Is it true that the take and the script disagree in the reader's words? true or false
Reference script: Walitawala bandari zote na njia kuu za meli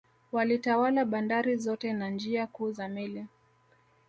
false